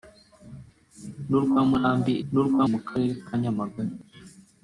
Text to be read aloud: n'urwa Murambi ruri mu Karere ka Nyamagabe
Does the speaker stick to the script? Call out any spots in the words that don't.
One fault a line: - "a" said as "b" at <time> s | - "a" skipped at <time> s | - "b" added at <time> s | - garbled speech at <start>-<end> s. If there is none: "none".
- "ruri" said as "n'urwa" at 2.3 s